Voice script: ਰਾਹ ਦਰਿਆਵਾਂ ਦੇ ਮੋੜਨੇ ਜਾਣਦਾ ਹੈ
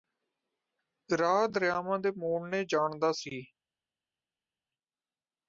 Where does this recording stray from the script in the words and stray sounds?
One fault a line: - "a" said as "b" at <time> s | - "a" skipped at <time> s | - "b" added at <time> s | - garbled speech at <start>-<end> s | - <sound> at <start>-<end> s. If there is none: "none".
- "ਹੈ" said as "ਸੀ" at 3.1 s